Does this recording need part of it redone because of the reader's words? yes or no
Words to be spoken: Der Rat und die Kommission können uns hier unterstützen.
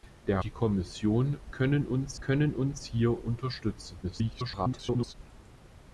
yes